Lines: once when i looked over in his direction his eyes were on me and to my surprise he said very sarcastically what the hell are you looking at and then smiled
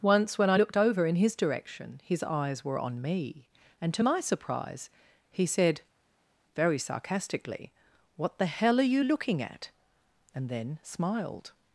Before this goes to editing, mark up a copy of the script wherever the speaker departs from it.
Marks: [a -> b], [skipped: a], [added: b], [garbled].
once when i looked over in his direction his eyes were on me and to my surprise he said very sarcastically what the hell are you looking at and then smiled